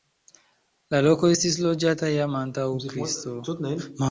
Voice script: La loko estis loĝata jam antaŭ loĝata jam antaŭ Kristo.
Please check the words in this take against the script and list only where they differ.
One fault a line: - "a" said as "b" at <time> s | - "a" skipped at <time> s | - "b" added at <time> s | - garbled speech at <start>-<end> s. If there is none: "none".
- "loĝata jam antaŭ" skipped at 2.7 s